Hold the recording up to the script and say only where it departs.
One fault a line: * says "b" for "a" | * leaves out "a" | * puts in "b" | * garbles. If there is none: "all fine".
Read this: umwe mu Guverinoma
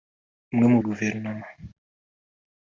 all fine